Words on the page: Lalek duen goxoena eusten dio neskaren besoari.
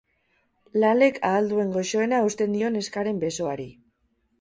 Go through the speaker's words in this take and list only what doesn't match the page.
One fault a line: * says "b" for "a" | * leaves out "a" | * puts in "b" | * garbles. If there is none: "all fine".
* puts in "ahal"